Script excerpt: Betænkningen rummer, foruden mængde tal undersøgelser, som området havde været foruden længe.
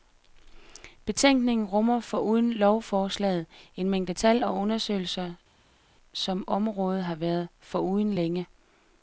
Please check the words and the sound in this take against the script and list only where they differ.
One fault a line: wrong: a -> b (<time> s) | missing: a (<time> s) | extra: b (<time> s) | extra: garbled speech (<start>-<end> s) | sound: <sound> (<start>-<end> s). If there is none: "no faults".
extra: lovforslaget en (2.5 s)
extra: og (4.4 s)
wrong: havde -> har (7.0 s)